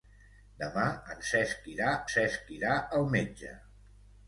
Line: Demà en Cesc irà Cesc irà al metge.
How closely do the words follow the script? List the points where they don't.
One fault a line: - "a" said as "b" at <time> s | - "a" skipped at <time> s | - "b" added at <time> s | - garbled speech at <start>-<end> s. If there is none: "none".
none